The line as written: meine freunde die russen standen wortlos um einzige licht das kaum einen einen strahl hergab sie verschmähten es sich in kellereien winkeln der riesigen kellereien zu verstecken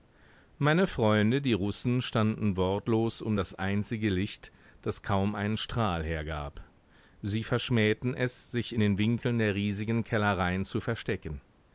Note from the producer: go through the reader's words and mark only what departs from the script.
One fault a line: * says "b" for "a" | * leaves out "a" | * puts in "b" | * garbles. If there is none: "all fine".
* puts in "das"
* leaves out "einen"
* says "den" for "kellereien"